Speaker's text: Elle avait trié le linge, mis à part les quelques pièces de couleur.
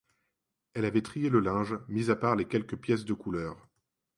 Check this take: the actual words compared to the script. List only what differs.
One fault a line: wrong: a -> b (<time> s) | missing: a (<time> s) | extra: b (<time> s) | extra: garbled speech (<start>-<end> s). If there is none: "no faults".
no faults